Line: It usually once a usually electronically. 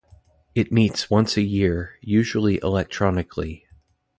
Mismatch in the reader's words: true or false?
true